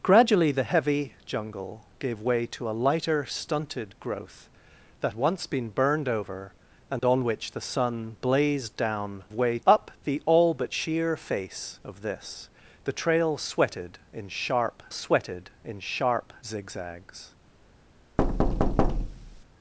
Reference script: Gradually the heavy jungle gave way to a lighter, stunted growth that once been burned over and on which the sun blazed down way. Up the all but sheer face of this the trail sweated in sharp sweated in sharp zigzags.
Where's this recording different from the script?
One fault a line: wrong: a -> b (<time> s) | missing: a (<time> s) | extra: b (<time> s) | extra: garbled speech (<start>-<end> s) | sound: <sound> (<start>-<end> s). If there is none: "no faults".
sound: dropout (7.0-7.0 s)
sound: thud (18.2-19.4 s)